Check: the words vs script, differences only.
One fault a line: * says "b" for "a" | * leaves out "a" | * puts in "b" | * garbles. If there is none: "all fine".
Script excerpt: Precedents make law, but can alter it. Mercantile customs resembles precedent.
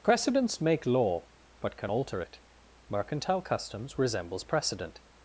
all fine